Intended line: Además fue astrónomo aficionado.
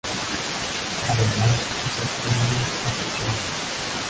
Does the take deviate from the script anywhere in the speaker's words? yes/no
yes